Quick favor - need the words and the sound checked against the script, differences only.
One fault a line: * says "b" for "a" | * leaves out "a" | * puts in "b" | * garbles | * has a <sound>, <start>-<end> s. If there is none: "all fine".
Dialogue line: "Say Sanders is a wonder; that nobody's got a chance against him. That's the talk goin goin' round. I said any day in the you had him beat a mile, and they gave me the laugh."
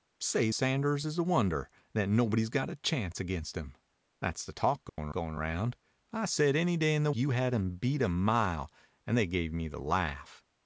* has a dropout, 4.9-5.0 s